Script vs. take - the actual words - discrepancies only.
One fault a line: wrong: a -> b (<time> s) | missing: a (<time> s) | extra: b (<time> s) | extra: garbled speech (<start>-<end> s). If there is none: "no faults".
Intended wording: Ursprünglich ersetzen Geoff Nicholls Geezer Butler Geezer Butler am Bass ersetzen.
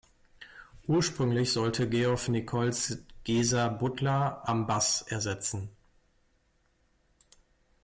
wrong: ersetzen -> sollte (1.5 s)
missing: Geezer Butler (4.5 s)